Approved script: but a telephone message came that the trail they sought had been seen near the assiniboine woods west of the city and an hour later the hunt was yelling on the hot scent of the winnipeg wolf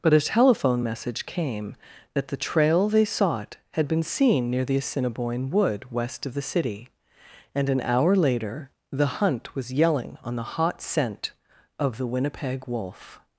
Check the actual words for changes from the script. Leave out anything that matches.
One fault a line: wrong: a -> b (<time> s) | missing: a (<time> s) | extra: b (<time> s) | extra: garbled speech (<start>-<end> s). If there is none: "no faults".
wrong: woods -> wood (5.5 s)